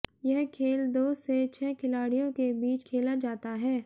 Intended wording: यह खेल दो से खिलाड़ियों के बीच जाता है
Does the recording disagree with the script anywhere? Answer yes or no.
yes